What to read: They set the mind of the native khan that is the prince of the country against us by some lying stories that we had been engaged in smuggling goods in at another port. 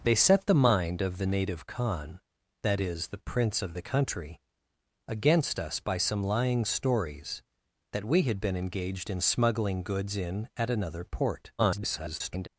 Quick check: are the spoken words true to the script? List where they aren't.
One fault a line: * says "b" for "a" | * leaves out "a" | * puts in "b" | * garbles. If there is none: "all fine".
* garbles